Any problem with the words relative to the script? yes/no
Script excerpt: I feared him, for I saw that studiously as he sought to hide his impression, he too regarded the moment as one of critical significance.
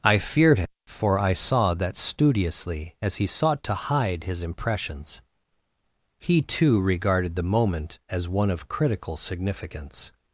yes